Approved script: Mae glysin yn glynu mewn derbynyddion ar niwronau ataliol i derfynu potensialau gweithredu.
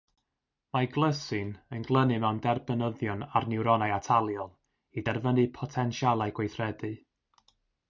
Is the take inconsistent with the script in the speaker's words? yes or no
no